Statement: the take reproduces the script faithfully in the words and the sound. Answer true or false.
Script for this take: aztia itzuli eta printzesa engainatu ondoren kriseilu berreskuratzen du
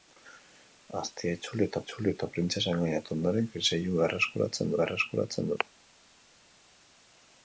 false